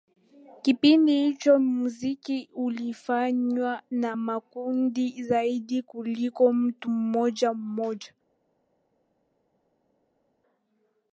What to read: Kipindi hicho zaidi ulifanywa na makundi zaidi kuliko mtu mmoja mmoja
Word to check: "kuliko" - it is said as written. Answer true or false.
true